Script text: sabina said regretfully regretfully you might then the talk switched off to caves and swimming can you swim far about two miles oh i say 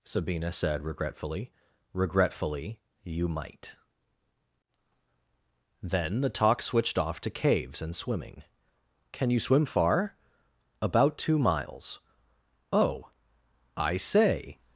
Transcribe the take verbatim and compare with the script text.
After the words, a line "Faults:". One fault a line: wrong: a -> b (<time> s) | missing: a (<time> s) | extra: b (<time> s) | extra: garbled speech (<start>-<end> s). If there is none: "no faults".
sabina said regretfully regretfully you might then the talk switched off to caves and swimming can you swim far about two miles oh i say
Faults:
no faults